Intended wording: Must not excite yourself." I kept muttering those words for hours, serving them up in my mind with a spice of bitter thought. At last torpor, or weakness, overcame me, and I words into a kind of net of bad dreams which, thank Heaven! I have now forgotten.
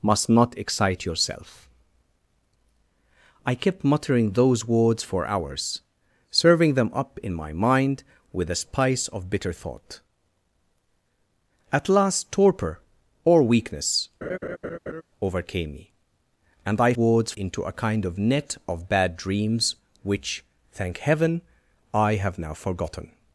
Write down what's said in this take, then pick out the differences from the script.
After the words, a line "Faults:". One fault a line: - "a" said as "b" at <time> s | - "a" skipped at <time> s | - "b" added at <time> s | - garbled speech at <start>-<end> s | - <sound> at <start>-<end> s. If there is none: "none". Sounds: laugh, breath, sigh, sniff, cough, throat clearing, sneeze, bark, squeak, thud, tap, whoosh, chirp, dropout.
Must not excite yourself." I kept muttering those words for hours, serving them up in my mind with a spice of bitter thought. At last torpor, or weakness, overcame me, and I words into a kind of net of bad dreams which, thank Heaven! I have now forgotten.
Faults:
- laugh at 14.2-15.0 s